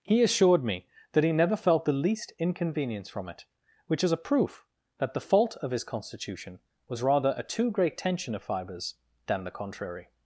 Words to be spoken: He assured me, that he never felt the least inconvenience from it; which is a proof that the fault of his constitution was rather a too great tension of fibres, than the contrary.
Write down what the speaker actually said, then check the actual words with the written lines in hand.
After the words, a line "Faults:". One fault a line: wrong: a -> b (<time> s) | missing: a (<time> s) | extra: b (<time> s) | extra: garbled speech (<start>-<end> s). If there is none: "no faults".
He assured me, that he never felt the least inconvenience from it; which is a proof that the fault of his constitution was rather a too great tension of fibres, than the contrary.
Faults:
no faults